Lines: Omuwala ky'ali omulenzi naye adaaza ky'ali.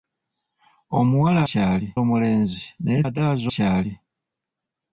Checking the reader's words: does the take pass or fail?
pass